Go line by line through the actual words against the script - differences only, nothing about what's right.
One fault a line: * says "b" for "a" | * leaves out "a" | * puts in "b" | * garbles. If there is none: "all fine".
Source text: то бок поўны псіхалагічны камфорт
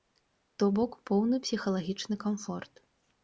all fine